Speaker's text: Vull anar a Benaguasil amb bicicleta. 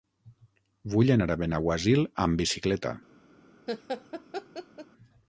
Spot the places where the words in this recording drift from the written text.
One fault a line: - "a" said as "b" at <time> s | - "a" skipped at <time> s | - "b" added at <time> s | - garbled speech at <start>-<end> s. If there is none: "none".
none